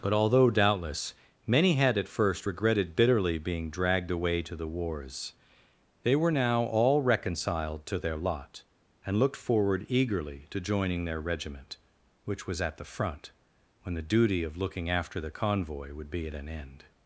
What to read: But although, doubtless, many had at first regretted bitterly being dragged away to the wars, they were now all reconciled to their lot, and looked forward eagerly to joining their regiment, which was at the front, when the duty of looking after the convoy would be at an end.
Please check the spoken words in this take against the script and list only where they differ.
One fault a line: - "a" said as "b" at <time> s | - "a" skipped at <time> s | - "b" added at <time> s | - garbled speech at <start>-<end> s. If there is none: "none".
none